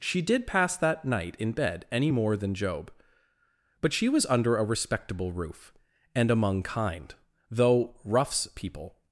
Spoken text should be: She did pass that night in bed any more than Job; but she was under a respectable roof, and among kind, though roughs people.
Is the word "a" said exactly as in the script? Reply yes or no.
yes